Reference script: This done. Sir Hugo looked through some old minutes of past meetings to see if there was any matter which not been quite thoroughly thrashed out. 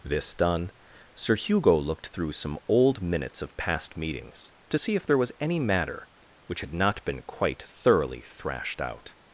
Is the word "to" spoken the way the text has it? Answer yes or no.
yes